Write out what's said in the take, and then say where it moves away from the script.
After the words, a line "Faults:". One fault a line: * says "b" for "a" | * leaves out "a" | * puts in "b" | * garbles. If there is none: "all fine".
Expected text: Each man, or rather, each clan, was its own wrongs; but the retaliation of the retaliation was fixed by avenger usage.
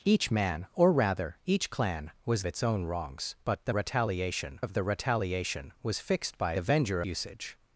Each man, or rather, each clan, was its own wrongs; but the retaliation of the retaliation was fixed by avenger usage.
Faults:
all fine